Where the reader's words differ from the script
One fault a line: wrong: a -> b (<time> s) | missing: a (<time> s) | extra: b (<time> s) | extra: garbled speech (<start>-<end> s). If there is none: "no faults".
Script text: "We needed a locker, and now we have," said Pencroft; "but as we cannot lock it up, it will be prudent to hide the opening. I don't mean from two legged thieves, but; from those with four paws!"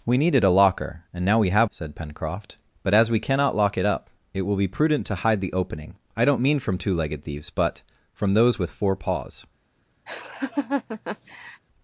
no faults